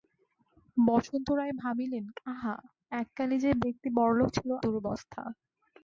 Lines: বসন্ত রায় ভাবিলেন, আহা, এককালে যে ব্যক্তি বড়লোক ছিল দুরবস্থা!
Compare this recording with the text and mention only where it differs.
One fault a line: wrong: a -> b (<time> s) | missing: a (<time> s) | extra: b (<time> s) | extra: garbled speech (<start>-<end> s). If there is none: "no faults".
no faults